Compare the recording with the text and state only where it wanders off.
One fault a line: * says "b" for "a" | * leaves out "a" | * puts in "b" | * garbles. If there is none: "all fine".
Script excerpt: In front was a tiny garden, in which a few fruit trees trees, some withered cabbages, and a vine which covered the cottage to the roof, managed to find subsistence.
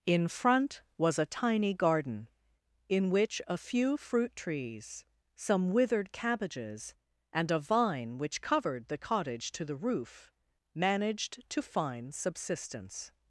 * leaves out "trees"